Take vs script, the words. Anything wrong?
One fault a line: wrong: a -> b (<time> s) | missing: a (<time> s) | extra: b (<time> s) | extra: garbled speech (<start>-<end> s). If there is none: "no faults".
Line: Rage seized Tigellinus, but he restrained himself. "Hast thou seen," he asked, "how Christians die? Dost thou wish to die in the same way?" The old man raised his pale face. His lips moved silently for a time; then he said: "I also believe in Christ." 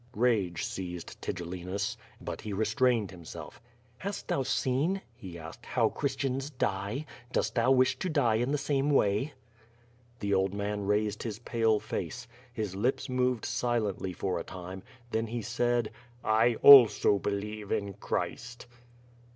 no faults